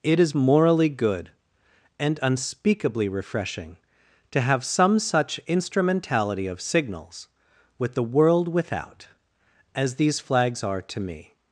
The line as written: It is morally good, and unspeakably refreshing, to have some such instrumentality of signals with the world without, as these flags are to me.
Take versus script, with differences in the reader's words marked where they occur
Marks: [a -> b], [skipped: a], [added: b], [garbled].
It is morally good, and unspeakably refreshing, to have some such instrumentality of signals with the world without, as these flags are to me.